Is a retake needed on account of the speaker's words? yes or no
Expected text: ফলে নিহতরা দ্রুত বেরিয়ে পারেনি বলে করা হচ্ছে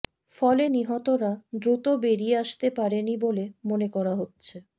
yes